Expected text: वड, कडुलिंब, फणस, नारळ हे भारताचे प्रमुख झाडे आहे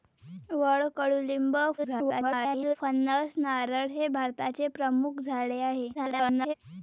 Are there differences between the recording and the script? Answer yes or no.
yes